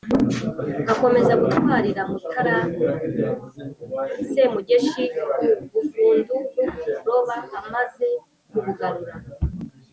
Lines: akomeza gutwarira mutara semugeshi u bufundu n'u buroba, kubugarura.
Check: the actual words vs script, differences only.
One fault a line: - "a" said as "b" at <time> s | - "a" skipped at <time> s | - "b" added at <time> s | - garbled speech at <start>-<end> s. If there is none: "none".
- "amaze" added at 7.6 s